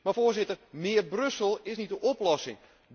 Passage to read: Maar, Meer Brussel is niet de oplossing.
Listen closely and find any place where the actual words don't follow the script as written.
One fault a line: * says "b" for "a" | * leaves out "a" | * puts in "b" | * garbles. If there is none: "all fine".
* puts in "Voorzitter"